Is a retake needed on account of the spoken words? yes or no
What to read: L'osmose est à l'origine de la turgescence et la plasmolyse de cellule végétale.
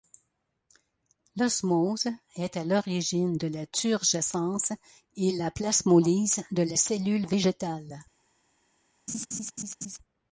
yes